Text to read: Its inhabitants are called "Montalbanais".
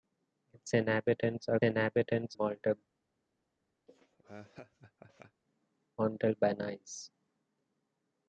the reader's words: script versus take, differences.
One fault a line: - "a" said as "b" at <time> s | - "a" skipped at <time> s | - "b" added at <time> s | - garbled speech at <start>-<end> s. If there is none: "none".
- "called" said as "inhabitants" at 1.6 s